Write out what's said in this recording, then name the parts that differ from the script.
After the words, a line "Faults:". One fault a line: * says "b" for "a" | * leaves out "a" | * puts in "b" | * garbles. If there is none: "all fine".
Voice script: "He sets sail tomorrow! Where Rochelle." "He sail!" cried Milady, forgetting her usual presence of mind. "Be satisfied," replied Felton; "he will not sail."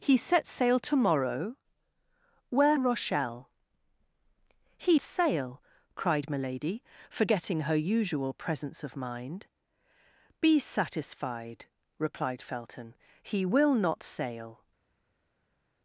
"He sets sail tomorrow! Where Rochelle." "He sail!" cried Milady, forgetting her usual presence of mind. "Be satisfied," replied Felton; "he will not sail."
Faults:
all fine